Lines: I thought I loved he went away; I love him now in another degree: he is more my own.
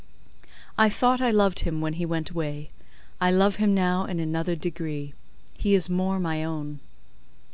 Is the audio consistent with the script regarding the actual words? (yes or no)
no